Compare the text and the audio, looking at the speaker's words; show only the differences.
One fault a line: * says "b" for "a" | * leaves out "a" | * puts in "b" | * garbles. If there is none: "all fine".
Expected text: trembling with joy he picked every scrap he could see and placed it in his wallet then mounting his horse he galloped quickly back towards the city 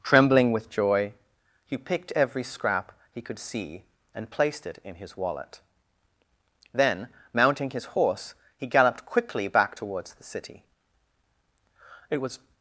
* puts in "it was"